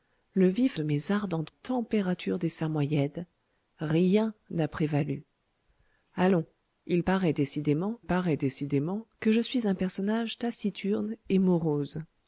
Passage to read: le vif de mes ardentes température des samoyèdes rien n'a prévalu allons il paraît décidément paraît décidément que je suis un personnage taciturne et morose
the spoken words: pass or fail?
pass